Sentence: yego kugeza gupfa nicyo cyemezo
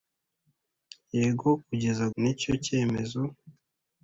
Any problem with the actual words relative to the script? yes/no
yes